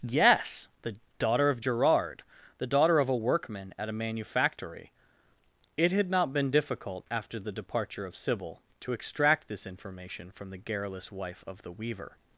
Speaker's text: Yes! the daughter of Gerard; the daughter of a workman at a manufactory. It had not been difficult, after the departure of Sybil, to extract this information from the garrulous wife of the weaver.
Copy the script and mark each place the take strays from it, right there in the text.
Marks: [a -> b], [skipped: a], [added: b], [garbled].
Yes! the daughter of Gerard; the daughter of a workman at a manufactory. It had not been difficult, after the departure of Sybil, to extract this information from the garrulous wife of the weaver.